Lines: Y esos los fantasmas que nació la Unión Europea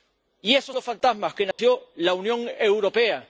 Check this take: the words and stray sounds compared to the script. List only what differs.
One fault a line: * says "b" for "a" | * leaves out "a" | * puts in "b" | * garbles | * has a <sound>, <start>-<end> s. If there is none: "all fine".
* has a dropout, 1.5-1.6 s